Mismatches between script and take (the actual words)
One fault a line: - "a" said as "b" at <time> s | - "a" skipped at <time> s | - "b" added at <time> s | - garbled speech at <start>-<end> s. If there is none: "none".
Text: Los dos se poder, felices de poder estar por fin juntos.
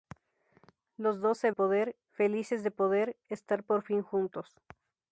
none